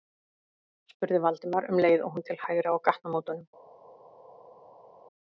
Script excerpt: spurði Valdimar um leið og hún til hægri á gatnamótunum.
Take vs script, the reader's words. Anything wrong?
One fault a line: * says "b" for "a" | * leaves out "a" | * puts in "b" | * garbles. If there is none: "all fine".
all fine